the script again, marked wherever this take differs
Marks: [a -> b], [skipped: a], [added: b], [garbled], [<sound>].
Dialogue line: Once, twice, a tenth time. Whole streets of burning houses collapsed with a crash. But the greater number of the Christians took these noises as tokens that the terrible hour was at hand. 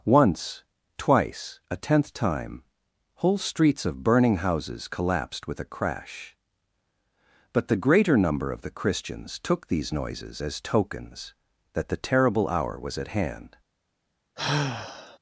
Once, twice, a tenth time. Whole streets of burning houses collapsed with a crash. But the greater number of the Christians took these noises as tokens that the terrible hour was at hand. [sigh]